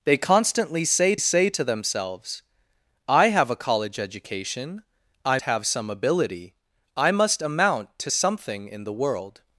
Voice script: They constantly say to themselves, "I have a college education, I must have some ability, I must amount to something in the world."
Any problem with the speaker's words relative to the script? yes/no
yes